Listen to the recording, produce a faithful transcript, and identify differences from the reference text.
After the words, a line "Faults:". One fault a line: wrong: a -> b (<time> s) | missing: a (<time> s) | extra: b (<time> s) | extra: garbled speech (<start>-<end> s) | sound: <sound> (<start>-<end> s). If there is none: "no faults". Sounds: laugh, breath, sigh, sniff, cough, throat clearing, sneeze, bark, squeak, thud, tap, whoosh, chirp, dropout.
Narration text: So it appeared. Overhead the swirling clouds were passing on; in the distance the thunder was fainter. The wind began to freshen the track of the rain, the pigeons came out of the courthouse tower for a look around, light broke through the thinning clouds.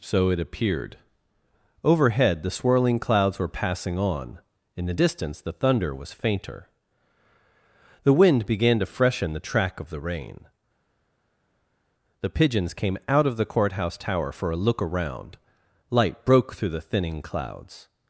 So it appeared. Overhead the swirling clouds were passing on; in the distance the thunder was fainter. The wind began to freshen the track of the rain, the pigeons came out of the courthouse tower for a look around, light broke through the thinning clouds.
Faults:
no faults